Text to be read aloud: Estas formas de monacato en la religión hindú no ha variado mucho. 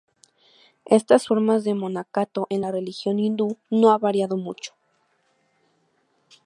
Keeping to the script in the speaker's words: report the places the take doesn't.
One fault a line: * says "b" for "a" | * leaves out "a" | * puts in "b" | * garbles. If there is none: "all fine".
all fine